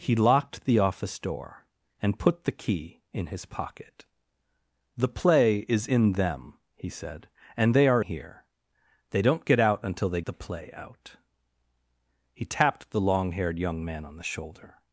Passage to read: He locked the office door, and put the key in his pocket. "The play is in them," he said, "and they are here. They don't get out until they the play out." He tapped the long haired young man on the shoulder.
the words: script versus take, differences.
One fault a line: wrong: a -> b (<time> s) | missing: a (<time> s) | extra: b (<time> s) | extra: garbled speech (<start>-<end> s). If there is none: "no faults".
no faults